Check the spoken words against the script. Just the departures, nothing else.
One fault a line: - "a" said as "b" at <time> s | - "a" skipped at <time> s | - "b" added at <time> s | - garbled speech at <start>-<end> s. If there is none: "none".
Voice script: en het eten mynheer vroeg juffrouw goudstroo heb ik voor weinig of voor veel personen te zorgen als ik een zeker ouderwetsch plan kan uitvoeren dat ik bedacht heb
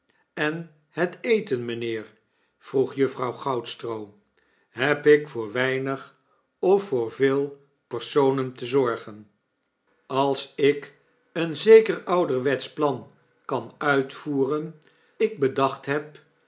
- "dat" skipped at 14.8 s